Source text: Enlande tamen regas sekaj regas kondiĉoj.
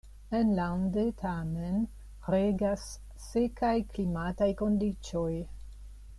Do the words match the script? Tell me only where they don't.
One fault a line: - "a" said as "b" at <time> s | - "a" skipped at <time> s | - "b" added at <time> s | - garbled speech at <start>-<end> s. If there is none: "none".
- "regas" said as "klimataj" at 3.9 s